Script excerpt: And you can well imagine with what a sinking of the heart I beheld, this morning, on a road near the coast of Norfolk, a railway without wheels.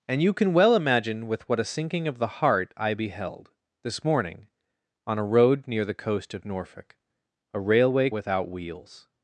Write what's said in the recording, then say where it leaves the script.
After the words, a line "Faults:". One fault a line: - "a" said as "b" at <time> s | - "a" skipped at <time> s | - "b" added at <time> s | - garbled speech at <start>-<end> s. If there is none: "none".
And you can well imagine with what a sinking of the heart I beheld, this morning, on a road near the coast of Norfolk, a railway without wheels.
Faults:
none